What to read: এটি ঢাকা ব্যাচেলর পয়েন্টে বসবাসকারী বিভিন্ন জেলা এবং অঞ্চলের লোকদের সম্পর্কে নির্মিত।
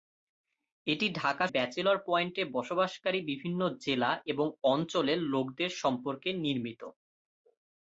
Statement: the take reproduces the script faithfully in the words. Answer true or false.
true